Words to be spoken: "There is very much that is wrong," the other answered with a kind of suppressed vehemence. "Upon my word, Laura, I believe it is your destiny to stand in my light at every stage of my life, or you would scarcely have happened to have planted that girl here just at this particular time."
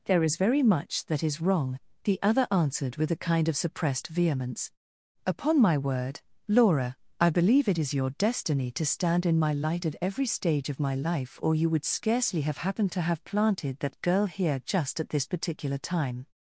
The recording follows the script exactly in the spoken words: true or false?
true